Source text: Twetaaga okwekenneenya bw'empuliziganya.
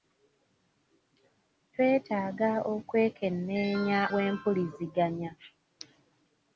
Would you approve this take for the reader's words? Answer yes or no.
yes